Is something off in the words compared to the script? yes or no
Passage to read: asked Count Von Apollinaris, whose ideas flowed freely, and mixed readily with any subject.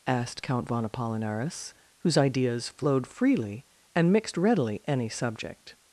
yes